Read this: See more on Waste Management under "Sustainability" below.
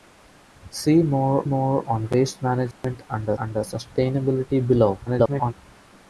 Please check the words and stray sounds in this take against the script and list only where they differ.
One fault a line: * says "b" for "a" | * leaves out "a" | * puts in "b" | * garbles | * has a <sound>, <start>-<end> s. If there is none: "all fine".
* puts in "more"
* has a dropout, 2.7-2.8 s
* puts in "under"
* garbles